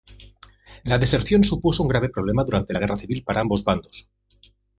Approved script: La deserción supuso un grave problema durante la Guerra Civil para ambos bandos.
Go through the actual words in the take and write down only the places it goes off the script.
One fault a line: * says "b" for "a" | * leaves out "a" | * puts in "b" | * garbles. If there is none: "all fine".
all fine